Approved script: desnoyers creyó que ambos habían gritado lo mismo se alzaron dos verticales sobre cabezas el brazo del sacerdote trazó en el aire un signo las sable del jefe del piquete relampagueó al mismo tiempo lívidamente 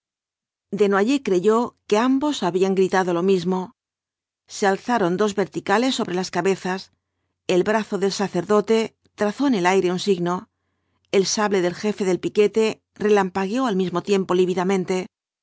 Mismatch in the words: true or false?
true